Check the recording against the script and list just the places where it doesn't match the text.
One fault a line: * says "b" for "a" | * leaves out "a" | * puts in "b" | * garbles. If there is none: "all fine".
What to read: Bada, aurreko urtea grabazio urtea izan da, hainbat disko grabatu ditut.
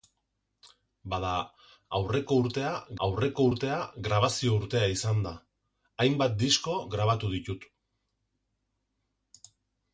* puts in "aurreko urtea"